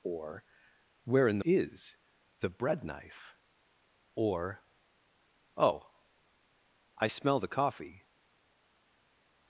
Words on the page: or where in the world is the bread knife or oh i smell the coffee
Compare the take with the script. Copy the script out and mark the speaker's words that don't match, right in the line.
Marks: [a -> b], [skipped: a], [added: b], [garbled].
or where in [skipped: the world] is the bread knife or oh i smell the coffee